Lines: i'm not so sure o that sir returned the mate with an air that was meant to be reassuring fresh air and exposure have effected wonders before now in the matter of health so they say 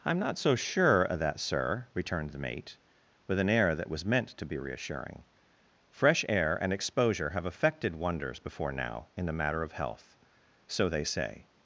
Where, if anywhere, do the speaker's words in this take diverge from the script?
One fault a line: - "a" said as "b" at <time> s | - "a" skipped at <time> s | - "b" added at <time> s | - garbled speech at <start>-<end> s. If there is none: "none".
none